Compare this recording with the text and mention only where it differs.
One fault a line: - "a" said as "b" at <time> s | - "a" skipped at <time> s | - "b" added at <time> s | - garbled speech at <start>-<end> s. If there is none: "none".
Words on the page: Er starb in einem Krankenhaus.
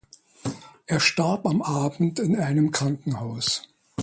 - "am Abend" added at 1.4 s